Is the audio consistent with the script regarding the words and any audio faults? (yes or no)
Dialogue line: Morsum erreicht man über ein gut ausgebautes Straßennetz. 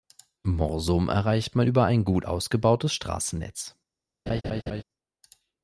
no